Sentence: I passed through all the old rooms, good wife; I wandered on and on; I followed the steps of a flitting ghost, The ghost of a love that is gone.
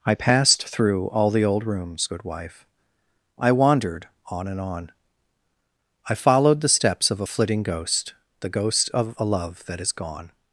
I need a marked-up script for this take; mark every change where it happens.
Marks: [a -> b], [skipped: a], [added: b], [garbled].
I passed through all the old rooms, good wife; I wandered on and on; I followed the steps of a flitting ghost, The ghost of a love that is gone.